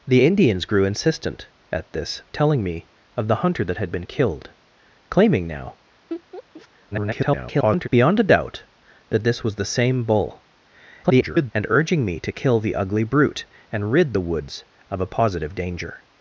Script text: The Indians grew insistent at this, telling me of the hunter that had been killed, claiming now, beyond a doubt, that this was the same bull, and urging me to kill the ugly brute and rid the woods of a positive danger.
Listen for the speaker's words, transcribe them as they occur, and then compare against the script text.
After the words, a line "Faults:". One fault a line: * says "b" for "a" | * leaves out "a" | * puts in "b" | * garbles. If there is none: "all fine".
The Indians grew insistent at this, telling me of the hunter that had been killed, claiming now, [garbled] beyond a doubt, that this was the same bull, [garbled] and urging me to kill the ugly brute and rid the woods of a positive danger.
Faults:
* garbles
* garbles